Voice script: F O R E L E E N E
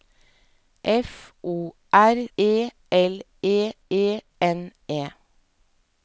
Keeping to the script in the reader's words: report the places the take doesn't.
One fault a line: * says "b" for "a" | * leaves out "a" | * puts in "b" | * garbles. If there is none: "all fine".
all fine